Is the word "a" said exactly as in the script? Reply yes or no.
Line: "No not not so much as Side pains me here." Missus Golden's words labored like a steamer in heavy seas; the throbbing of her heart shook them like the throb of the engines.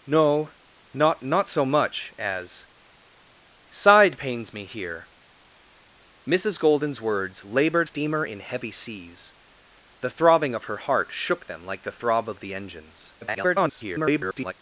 no